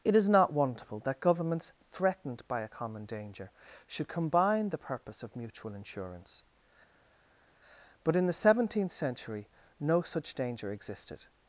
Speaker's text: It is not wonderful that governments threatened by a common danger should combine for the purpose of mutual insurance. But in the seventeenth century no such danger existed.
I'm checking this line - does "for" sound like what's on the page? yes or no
no